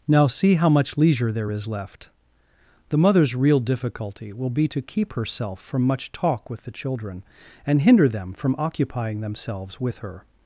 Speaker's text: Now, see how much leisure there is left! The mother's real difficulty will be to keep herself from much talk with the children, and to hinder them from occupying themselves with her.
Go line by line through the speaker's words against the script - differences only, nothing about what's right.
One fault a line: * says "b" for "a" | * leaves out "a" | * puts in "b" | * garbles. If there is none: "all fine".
* leaves out "to"